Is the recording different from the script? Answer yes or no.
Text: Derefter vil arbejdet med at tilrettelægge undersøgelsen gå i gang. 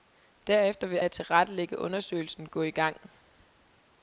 yes